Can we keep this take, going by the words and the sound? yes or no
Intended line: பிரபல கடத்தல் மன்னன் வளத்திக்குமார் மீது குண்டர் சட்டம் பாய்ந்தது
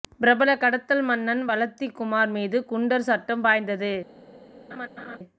no